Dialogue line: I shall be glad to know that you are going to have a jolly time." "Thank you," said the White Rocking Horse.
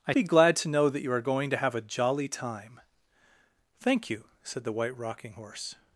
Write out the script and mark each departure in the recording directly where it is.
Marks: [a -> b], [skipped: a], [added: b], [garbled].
I [skipped: shall] be glad to know that you are going to have a jolly time." "Thank you," said the White Rocking Horse.